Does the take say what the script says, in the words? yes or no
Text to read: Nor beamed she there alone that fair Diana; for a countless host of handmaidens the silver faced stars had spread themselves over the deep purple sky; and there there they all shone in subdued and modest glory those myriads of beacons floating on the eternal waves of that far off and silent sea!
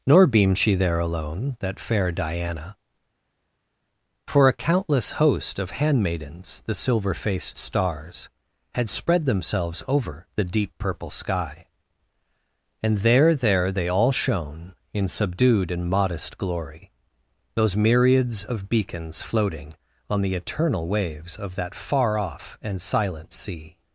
yes